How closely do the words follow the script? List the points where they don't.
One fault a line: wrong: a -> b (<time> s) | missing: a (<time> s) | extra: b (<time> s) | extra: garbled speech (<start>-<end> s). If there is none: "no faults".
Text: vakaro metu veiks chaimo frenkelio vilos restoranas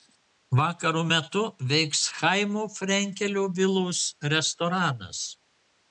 no faults